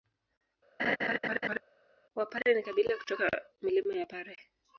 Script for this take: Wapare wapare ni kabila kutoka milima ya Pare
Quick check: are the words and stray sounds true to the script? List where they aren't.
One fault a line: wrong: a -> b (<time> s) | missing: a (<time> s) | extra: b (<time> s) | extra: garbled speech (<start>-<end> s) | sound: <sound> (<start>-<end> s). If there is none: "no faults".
sound: laugh (0.8-1.6 s)
missing: wapare (2.5 s)